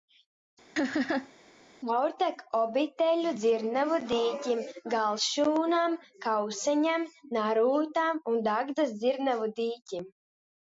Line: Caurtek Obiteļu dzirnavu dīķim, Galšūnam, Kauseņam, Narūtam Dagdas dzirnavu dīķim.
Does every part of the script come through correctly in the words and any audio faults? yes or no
no